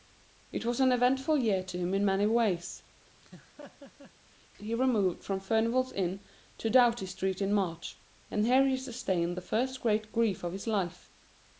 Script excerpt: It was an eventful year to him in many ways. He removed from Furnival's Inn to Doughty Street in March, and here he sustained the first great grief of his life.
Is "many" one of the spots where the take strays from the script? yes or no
no